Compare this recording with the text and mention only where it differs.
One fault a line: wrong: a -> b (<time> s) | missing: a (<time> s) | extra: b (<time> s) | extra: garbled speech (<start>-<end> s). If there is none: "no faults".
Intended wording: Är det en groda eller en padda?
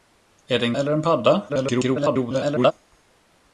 missing: groda (0.7 s)
extra: garbled speech (1.5-2.7 s)